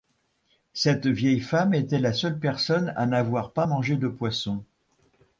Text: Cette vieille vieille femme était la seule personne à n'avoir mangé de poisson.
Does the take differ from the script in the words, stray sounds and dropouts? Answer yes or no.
yes